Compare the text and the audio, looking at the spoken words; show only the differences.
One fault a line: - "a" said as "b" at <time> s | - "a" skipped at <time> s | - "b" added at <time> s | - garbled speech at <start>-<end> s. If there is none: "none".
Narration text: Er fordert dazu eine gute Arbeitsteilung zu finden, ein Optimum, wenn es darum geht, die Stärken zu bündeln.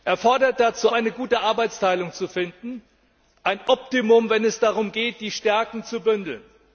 none